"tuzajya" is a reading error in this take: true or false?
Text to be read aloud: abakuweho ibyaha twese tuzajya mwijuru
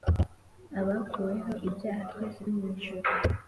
true